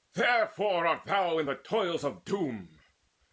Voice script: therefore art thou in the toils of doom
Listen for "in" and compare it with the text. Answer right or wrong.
right